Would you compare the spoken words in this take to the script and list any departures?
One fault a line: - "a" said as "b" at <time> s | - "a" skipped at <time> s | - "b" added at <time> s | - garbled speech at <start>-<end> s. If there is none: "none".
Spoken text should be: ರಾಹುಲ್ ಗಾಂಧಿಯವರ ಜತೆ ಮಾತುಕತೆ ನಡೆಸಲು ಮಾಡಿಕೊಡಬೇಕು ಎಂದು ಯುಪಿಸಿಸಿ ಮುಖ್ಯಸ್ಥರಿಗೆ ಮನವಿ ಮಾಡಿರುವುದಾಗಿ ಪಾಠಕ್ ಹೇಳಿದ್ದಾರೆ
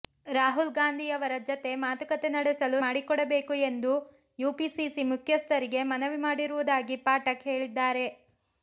none